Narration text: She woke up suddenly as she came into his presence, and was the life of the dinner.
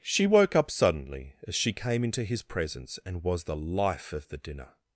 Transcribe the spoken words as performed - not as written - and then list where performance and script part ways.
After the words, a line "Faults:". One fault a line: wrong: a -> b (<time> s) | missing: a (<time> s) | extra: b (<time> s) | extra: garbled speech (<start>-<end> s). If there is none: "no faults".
She woke up suddenly as she came into his presence, and was the life of the dinner.
Faults:
no faults